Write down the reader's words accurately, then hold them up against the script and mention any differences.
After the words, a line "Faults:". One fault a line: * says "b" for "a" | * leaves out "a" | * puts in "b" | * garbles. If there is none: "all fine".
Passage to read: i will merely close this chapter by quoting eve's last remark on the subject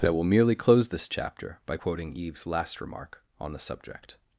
i will merely close this chapter by quoting eve's last remark on the subject
Faults:
all fine